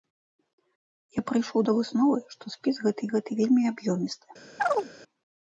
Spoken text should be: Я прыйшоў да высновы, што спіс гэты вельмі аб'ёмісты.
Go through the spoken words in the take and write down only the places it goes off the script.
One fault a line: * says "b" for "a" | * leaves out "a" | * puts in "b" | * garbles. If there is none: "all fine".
* puts in "гэты"